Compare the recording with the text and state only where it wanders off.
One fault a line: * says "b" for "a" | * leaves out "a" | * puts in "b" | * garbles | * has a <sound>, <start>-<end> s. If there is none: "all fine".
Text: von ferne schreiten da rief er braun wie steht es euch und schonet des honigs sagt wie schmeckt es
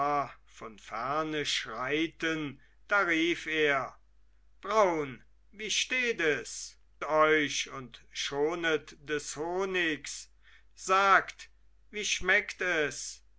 all fine